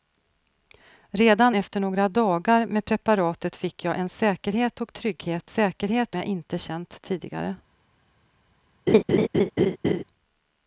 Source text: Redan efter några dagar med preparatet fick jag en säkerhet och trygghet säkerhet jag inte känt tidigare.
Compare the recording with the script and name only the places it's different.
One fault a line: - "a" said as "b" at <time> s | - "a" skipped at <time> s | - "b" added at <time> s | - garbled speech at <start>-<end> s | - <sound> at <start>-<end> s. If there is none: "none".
- laugh at 8.9-10.0 s